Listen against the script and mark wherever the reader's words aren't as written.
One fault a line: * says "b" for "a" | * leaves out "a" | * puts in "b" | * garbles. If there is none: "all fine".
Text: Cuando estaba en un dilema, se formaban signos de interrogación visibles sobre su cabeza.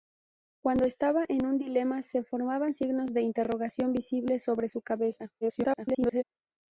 * garbles